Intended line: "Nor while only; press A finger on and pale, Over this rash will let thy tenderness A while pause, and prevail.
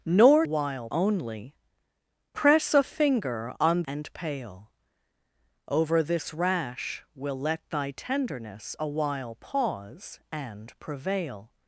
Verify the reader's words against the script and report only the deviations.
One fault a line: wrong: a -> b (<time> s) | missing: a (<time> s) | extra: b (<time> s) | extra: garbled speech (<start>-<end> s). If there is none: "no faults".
no faults